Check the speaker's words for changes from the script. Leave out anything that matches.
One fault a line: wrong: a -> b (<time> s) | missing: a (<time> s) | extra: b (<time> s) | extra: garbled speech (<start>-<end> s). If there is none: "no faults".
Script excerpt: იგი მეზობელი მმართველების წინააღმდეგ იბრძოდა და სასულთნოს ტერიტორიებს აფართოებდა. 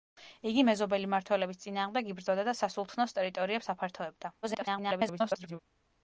extra: garbled speech (4.4-5.6 s)